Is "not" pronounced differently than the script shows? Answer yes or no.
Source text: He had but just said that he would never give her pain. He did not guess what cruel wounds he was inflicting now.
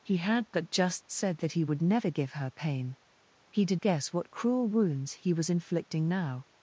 yes